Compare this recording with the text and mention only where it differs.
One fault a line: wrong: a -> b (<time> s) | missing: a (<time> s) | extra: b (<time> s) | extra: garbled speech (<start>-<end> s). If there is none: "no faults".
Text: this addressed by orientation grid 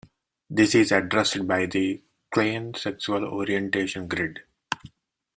extra: is (0.7 s)
extra: the klein sexual (1.7 s)